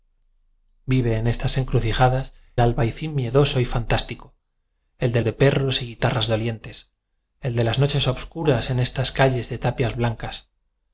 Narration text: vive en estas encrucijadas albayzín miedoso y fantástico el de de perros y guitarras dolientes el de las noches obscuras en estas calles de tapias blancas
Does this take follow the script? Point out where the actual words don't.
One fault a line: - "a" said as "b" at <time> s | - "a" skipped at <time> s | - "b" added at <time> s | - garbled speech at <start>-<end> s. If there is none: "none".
none